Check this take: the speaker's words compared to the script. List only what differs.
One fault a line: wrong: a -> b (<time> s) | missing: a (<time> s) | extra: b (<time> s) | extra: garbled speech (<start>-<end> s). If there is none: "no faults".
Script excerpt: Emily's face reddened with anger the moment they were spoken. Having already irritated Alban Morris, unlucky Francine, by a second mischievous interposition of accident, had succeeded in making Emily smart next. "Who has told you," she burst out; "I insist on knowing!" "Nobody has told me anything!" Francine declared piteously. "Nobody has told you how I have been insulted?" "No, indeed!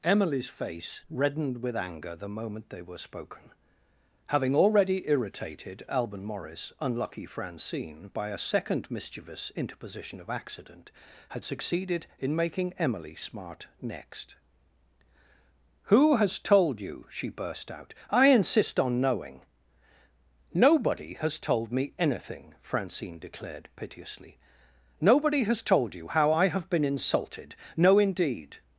no faults